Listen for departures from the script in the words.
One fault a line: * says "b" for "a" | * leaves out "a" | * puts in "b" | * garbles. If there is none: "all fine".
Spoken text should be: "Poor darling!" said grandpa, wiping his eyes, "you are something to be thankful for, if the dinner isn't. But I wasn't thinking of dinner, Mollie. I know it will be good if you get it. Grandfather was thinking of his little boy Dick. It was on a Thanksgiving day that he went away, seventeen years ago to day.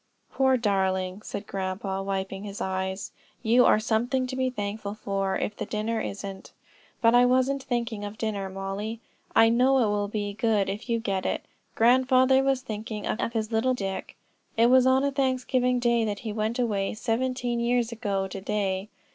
* puts in "of"
* leaves out "boy"